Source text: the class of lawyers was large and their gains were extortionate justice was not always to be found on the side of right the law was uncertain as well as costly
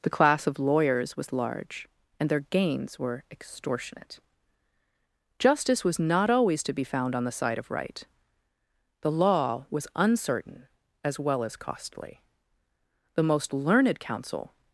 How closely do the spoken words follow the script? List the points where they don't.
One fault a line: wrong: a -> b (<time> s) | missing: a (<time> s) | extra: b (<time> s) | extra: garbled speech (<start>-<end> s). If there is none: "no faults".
extra: the most learned counsel (13.2 s)